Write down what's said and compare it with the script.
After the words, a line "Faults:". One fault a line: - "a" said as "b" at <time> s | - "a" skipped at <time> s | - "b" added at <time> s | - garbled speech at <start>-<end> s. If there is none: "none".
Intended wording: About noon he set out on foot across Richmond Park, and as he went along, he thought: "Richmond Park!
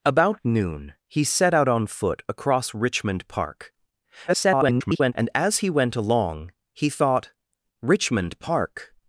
About noon he set out on foot across Richmond Park, [garbled] and as he went along, he thought: "Richmond Park!
Faults:
- garbled speech at 4.3-5.1 s